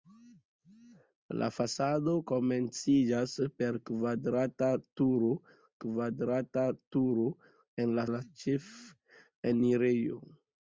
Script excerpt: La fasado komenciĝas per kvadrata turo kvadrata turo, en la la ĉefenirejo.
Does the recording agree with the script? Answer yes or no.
yes